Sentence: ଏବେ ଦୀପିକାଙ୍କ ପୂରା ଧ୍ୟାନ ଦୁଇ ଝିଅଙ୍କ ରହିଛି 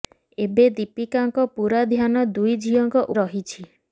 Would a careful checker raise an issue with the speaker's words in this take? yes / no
no